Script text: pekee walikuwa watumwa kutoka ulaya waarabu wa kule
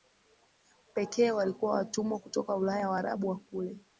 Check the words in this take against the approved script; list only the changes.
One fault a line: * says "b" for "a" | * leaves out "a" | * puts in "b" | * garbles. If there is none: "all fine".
all fine